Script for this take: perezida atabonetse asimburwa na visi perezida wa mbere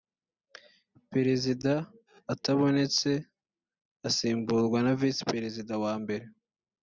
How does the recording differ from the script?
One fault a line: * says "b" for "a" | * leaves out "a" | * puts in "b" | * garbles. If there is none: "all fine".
all fine